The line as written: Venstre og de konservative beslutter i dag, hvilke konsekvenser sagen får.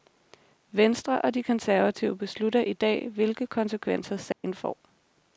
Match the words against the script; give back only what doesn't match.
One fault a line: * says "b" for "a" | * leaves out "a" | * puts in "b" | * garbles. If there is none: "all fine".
all fine